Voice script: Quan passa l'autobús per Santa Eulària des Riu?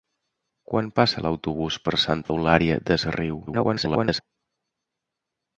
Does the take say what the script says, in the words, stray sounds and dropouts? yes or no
no